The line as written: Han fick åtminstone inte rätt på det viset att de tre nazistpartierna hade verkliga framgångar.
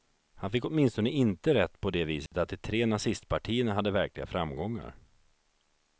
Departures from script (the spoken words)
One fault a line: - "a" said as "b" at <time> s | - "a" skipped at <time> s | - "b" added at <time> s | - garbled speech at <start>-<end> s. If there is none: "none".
none